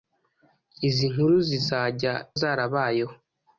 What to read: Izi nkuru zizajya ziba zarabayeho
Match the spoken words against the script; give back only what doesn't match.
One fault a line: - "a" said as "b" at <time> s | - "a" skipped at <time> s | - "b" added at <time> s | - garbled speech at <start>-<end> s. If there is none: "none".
- "ziba" skipped at 2.1 s